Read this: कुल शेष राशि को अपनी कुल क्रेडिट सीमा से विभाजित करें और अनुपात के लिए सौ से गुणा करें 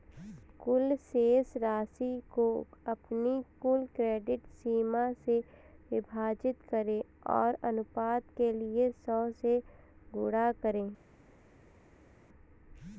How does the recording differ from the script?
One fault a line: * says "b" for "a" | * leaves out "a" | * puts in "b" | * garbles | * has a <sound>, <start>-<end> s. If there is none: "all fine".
all fine